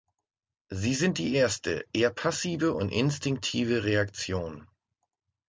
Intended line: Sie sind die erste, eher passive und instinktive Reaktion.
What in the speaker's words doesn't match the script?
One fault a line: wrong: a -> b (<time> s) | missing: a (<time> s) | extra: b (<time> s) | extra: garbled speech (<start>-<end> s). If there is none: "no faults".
no faults